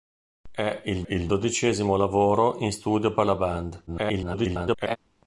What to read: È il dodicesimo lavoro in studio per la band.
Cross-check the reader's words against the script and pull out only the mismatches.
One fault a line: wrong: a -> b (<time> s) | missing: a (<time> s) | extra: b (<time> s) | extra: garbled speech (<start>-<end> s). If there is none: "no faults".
extra: il (1.1 s)
extra: garbled speech (3.9-5.0 s)